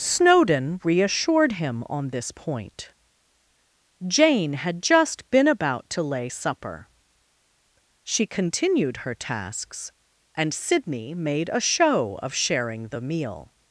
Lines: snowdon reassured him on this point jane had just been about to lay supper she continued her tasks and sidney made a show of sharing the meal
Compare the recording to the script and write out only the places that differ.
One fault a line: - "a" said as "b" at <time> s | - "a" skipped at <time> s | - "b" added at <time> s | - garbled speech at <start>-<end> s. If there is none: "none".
none